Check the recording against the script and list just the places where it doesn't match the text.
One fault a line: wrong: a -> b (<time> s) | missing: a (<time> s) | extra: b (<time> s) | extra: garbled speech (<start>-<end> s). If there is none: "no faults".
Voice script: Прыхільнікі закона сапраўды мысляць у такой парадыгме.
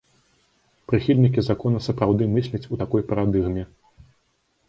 no faults